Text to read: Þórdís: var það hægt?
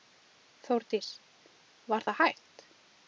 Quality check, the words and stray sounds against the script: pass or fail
pass